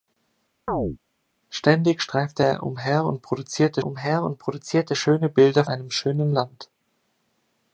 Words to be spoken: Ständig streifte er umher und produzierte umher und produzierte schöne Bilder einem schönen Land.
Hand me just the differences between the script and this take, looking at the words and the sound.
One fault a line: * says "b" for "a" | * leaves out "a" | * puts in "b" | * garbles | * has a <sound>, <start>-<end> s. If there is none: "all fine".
* has a chirp, 0.7-1.0 s